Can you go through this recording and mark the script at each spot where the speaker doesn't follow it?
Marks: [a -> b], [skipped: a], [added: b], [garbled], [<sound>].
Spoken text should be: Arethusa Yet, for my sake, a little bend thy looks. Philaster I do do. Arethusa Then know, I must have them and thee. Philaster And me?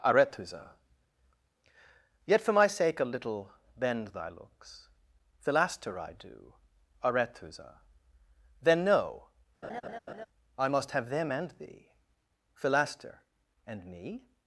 Arethusa Yet, for my sake, a little bend thy looks. Philaster I do [skipped: do.] Arethusa Then know, [laugh] I must have them and thee. Philaster And me?